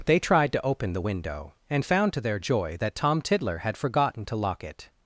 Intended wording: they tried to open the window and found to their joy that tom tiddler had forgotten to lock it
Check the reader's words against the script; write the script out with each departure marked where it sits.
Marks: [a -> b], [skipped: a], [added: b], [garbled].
they tried to open the window and found to their joy that tom tiddler had forgotten to lock it